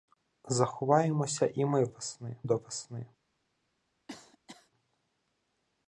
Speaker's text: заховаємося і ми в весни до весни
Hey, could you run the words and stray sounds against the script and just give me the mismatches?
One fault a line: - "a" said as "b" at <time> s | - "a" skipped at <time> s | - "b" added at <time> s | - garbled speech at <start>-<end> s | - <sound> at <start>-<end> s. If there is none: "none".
- cough at 4.1-4.7 s